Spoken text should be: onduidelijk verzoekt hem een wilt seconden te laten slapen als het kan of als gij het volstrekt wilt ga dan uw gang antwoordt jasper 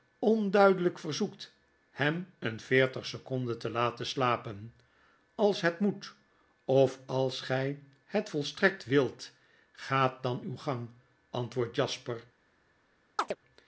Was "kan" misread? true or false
true